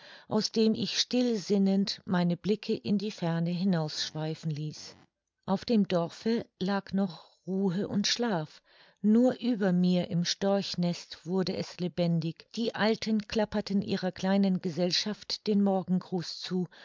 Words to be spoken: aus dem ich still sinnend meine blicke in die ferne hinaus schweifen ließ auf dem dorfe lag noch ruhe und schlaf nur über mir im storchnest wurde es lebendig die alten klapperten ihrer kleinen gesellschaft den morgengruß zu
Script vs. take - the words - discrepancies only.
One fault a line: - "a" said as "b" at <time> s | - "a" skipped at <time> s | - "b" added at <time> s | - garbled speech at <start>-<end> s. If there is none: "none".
none